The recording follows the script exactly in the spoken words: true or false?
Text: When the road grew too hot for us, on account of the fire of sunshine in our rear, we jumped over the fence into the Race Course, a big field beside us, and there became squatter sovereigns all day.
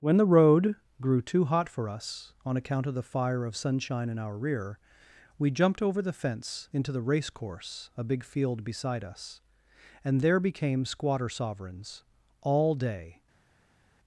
true